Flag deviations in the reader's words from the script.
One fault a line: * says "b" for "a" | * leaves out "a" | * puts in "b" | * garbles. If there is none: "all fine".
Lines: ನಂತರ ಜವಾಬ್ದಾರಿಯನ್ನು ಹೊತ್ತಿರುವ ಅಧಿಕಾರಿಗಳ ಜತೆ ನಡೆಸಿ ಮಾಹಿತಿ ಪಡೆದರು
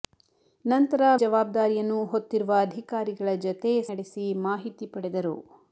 all fine